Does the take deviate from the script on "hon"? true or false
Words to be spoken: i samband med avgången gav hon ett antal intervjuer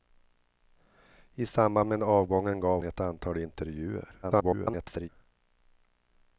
true